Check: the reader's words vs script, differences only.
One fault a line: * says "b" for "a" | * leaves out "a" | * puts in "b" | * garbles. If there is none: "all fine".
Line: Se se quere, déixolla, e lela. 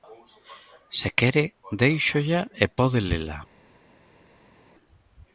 * leaves out "se"
* puts in "pode"